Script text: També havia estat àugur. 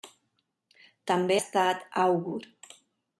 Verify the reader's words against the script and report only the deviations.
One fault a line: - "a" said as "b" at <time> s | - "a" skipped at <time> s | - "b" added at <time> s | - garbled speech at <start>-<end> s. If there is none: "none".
- "havia" skipped at 1.4 s